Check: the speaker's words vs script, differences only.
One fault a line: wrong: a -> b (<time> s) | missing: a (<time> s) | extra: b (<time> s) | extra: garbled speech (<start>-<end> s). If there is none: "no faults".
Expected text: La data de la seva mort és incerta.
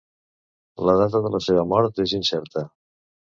no faults